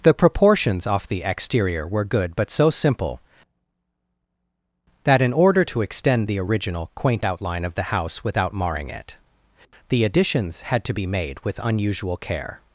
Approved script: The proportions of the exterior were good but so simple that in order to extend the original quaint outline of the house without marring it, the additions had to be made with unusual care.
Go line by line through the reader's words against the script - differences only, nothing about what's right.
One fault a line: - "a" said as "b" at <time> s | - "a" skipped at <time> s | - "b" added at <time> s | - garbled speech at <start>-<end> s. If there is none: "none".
- "of" said as "off" at 0.9 s